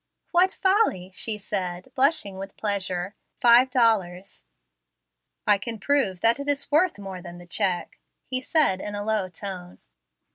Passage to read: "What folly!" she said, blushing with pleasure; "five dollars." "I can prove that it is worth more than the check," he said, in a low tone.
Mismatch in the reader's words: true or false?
false